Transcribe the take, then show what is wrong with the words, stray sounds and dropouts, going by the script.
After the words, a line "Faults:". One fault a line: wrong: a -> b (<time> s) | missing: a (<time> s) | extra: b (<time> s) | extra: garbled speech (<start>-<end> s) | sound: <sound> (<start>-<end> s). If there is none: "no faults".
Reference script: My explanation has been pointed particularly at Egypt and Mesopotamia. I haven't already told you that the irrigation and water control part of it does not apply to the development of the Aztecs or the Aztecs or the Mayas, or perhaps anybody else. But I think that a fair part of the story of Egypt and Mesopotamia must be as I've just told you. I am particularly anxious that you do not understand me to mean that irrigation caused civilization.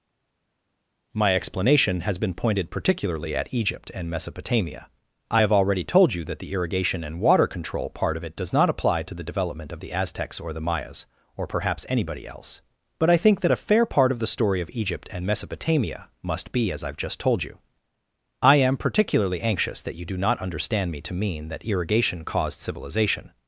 My explanation has been pointed particularly at Egypt and Mesopotamia. I have already told you that the irrigation and water control part of it does not apply to the development of the Aztecs or the Mayas, or perhaps anybody else. But I think that a fair part of the story of Egypt and Mesopotamia must be as I've just told you. I am particularly anxious that you do not understand me to mean that irrigation caused civilization.
Faults:
wrong: haven't -> have (5.4 s)
missing: Aztecs or the (10.6 s)